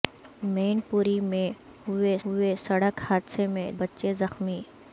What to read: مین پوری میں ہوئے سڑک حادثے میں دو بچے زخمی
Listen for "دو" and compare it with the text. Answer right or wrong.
wrong